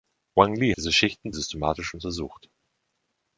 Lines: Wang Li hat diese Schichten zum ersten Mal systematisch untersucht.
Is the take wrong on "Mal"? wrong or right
wrong